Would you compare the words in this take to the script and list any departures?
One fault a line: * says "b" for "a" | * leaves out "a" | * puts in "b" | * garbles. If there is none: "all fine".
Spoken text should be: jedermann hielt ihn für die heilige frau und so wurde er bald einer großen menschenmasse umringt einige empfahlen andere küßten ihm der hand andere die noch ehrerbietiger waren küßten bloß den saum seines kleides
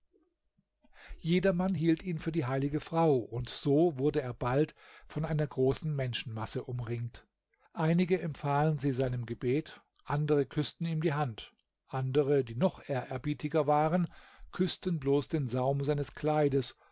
* puts in "von"
* puts in "sie seinem gebet"
* says "die" for "der"